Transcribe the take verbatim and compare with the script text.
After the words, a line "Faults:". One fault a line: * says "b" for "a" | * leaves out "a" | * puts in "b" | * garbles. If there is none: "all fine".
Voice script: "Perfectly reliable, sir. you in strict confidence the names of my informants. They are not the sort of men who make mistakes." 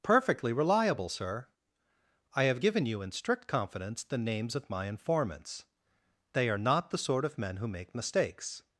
"Perfectly reliable, sir. I have given you in strict confidence the names of my informants. They are not the sort of men who make mistakes."
Faults:
* puts in "I have given"